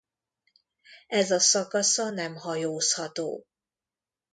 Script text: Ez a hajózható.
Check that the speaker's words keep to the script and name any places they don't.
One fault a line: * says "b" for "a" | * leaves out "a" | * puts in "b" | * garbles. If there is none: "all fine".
* puts in "szakasza nem"